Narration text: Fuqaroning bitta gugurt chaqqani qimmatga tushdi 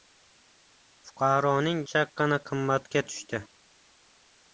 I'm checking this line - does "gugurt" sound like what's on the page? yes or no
no